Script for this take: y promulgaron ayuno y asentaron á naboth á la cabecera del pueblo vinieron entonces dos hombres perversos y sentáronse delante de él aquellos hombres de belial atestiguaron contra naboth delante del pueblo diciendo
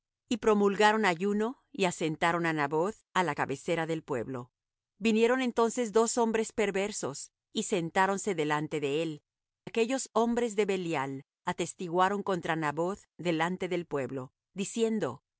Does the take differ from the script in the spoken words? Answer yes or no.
no